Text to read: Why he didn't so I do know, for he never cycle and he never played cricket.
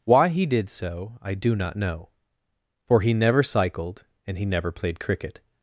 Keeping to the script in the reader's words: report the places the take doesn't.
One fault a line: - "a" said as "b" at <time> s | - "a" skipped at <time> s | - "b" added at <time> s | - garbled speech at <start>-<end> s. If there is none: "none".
- "didn't" said as "did" at 0.5 s
- "not" added at 1.6 s
- "cycle" said as "cycled" at 3.4 s